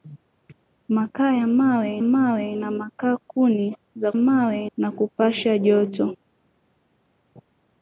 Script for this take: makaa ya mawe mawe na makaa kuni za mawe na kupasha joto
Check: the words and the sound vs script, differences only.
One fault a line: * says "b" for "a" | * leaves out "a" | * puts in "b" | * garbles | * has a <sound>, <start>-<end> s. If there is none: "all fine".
all fine